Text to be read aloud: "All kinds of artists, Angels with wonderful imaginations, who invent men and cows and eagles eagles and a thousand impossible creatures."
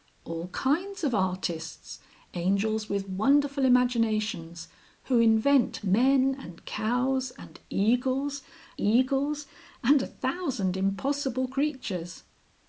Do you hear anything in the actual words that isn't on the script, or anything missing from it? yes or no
no